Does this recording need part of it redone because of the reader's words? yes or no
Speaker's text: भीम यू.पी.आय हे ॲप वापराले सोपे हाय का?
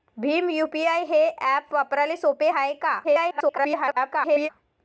yes